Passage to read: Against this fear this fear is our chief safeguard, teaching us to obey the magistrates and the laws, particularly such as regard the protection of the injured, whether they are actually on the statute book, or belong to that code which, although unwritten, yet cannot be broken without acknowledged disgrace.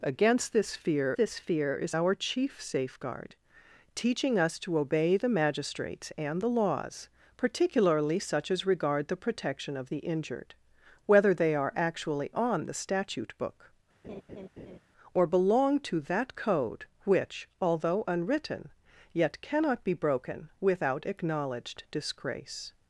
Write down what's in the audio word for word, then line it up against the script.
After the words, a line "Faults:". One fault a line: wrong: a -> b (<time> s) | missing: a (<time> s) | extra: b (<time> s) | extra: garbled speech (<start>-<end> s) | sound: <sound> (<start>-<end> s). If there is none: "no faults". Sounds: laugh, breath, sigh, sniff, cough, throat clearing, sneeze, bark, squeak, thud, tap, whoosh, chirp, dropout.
Against this fear this fear is our chief safeguard, teaching us to obey the magistrates and the laws, particularly such as regard the protection of the injured, whether they are actually on the statute book, or belong to that code which, although unwritten, yet cannot be broken without acknowledged disgrace.
Faults:
sound: laugh (14.0-14.8 s)